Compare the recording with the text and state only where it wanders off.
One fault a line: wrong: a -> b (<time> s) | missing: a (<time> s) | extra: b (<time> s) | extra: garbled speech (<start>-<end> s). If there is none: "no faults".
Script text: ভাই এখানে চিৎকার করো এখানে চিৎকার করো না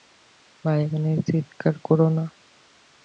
missing: এখানে চিৎকার করো (2.1 s)